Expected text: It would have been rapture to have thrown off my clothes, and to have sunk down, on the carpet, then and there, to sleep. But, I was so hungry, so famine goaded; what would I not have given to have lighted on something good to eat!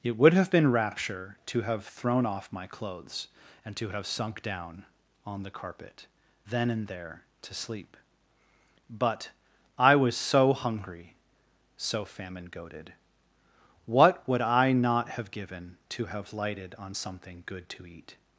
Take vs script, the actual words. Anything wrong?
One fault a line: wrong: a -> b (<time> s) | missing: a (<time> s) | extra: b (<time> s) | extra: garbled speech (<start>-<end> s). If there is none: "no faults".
no faults